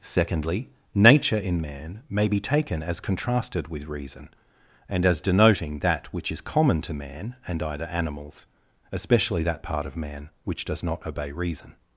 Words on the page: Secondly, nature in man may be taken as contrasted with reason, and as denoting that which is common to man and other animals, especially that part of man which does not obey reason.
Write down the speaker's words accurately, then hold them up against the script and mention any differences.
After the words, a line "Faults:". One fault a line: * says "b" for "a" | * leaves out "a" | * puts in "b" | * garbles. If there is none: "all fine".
Secondly, nature in man may be taken as contrasted with reason, and as denoting that which is common to man and either animals, especially that part of man which does not obey reason.
Faults:
* says "either" for "other"